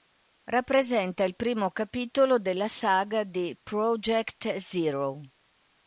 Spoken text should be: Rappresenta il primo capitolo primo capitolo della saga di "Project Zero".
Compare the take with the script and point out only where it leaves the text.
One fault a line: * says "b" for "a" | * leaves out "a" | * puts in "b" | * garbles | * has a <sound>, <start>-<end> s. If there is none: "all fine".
* leaves out "primo capitolo"